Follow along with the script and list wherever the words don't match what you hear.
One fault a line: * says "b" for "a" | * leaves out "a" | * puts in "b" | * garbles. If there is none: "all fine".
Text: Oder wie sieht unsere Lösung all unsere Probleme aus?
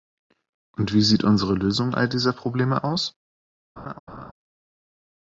* says "Und" for "Oder"
* says "dieser" for "unsere"